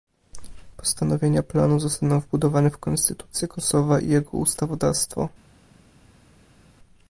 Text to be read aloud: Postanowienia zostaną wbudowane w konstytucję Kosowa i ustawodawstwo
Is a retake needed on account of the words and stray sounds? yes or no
yes